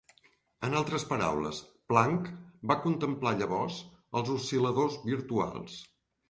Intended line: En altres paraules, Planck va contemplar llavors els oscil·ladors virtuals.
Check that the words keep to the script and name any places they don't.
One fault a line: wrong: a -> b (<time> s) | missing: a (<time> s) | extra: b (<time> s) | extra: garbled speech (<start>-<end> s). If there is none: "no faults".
no faults